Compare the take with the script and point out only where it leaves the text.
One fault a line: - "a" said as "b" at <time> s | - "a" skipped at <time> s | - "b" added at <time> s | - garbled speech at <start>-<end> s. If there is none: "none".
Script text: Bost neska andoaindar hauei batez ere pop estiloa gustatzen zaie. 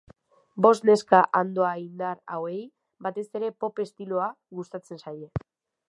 none